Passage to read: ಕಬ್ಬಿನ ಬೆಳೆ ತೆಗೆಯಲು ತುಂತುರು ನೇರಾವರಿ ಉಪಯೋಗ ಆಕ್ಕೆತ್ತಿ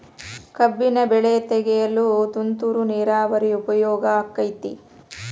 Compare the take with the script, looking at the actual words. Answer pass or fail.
pass